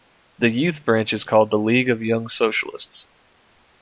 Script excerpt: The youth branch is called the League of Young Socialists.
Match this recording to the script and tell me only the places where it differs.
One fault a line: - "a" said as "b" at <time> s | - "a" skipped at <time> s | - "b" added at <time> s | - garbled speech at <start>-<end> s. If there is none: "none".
none